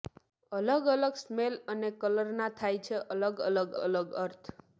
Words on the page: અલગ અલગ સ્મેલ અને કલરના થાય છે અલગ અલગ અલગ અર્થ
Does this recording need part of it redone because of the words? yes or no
no